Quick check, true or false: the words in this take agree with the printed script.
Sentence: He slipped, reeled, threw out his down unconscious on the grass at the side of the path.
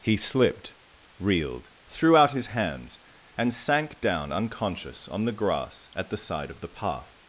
false